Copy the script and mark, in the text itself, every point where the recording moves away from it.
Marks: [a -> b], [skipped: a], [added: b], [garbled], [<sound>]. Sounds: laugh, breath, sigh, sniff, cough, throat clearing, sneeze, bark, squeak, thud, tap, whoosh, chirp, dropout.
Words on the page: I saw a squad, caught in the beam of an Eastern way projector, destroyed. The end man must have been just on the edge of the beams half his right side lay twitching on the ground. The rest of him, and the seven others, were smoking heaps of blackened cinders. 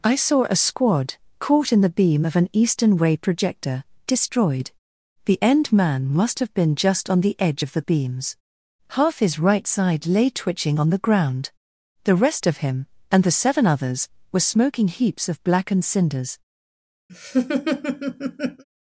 I saw a squad, caught in the beam of an Eastern way projector, destroyed. The end man must have been just on the edge of the beams half his right side lay twitching on the ground. The rest of him, and the seven others, were smoking heaps of blackened cinders. [laugh]